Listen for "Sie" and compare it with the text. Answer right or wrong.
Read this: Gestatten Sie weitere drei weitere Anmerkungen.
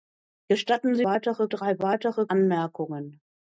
right